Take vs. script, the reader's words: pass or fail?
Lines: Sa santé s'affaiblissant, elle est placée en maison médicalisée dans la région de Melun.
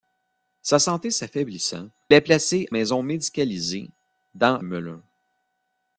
fail